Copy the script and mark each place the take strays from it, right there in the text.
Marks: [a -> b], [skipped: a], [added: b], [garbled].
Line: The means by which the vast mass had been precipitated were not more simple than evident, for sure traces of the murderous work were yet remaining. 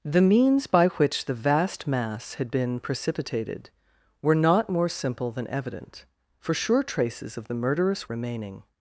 The means by which the vast mass had been precipitated were not more simple than evident, for sure traces of the murderous [skipped: work were yet] remaining.